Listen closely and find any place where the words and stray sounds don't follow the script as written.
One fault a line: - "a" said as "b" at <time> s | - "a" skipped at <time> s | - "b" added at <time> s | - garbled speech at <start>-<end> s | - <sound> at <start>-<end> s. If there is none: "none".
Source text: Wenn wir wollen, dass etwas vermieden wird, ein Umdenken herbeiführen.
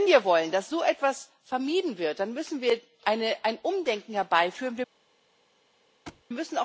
- "so" added at 0.7 s
- "dann müssen wir" added at 2.2 s
- thud at 6.1-6.2 s